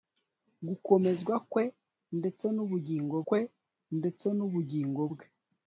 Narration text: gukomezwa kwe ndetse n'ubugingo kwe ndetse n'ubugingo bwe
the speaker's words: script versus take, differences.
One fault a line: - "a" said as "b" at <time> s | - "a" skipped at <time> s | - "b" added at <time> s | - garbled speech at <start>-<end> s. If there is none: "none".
none